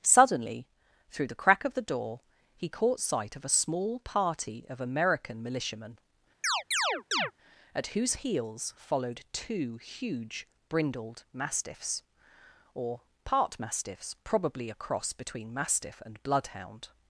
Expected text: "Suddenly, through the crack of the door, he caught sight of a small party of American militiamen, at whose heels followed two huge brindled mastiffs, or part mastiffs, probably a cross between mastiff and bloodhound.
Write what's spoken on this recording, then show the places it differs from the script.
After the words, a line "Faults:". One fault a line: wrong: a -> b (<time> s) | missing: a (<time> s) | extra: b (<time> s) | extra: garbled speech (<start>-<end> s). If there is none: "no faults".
"Suddenly, through the crack of the door, he caught sight of a small party of American militiamen, at whose heels followed two huge brindled mastiffs, or part mastiffs, probably a cross between mastiff and bloodhound.
Faults:
no faults